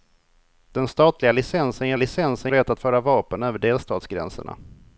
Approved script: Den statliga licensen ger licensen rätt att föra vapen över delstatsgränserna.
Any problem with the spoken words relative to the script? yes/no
no